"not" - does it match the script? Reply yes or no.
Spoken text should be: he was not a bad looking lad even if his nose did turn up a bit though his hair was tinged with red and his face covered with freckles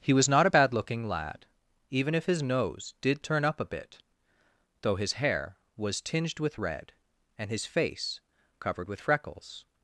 yes